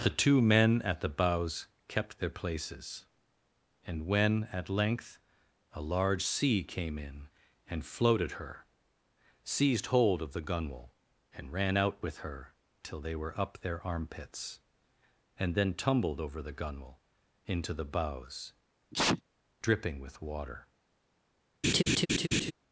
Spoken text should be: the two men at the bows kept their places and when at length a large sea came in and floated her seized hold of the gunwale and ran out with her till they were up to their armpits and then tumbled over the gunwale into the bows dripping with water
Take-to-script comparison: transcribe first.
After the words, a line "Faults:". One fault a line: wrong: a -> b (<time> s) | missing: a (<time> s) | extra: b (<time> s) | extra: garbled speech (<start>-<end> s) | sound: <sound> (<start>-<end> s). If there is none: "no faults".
the two men at the bows kept their places and when at length a large sea came in and floated her seized hold of the gunwale and ran out with her till they were up their armpits and then tumbled over the gunwale into the bows dripping with water
Faults:
missing: to (13.6 s)
sound: sneeze (18.9-19.2 s)
sound: laugh (21.6-22.5 s)